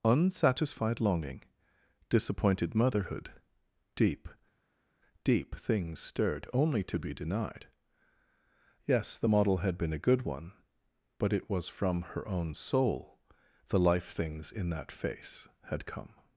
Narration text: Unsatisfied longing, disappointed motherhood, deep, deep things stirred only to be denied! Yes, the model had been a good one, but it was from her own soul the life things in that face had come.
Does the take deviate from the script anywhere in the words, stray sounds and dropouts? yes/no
no